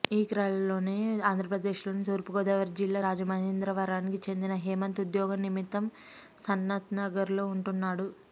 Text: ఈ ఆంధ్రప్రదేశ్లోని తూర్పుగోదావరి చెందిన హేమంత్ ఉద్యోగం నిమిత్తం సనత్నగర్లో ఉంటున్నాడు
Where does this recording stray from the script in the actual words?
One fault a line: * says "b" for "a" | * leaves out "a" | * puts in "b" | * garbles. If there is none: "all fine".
* puts in "క్రలోనే"
* puts in "జిల్లా రాజమహేంద్రవరానికి"